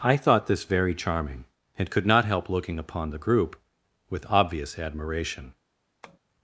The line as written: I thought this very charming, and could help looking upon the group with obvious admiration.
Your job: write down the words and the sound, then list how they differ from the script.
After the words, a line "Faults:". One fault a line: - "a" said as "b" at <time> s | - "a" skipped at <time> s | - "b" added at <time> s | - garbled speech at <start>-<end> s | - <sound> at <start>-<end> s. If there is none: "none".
I thought this very charming, and could not help looking upon the group with obvious admiration.
Faults:
- "not" added at 2.1 s
- tap at 6.0-6.2 s